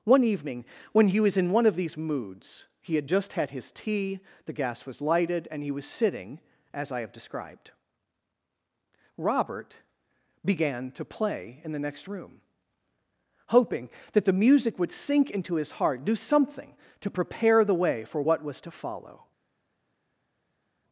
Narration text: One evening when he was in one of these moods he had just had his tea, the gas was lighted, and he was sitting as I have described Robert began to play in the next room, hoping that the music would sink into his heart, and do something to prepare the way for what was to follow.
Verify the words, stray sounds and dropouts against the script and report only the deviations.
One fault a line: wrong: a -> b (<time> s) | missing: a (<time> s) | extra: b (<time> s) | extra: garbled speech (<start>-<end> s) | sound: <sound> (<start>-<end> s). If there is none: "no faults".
missing: and (16.0 s)